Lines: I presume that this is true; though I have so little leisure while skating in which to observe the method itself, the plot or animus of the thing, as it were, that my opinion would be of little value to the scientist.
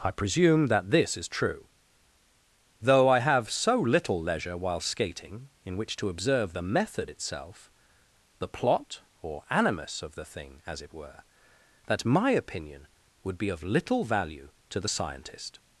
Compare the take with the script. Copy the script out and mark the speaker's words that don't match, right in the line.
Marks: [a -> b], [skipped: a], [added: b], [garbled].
I presume that this is true; though I have so little leisure while skating in which to observe the method itself, the plot or animus of the thing, as it were, that my opinion would be of little value to the scientist.